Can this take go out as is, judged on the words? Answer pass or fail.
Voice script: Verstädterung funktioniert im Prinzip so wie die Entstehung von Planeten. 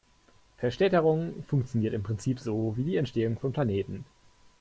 pass